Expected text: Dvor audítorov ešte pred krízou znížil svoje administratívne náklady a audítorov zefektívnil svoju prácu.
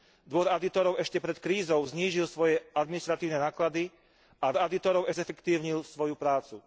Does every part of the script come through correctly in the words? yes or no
yes